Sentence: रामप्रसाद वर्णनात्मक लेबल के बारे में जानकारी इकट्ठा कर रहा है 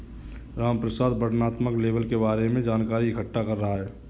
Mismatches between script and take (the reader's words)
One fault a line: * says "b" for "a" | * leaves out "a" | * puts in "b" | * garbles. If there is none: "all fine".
all fine